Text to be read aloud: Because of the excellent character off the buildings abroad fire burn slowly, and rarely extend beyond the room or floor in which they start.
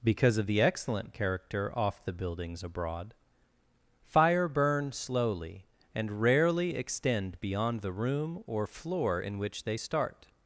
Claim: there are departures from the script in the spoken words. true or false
false